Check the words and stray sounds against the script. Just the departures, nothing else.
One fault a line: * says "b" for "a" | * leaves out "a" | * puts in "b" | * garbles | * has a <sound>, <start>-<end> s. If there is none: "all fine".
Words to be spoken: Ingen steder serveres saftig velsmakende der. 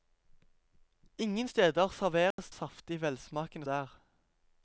* has a dropout, 2.3-2.4 s